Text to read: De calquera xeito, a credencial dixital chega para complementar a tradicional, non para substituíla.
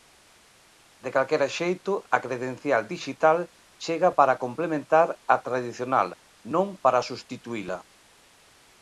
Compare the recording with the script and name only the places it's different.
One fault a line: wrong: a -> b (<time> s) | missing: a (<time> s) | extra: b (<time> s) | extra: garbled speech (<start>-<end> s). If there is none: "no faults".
no faults